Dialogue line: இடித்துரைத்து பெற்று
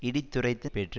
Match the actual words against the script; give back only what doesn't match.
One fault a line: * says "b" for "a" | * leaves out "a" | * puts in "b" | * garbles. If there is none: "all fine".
all fine